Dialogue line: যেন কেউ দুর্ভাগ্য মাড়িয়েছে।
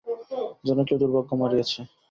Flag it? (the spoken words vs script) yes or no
no